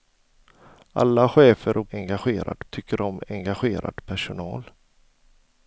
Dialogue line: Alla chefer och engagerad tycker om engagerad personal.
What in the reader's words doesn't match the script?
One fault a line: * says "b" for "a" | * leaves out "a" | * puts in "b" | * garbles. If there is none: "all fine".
all fine